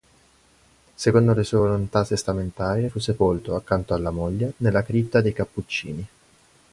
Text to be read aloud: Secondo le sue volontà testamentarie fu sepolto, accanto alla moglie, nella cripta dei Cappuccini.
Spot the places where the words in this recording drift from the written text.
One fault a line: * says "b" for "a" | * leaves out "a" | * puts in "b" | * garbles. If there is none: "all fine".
all fine